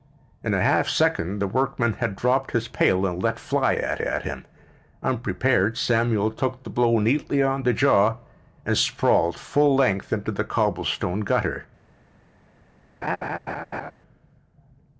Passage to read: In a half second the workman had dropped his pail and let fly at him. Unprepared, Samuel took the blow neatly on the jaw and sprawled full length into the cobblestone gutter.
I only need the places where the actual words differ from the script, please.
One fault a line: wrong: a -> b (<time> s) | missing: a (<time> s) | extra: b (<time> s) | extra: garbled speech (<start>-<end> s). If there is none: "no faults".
extra: at (4.0 s)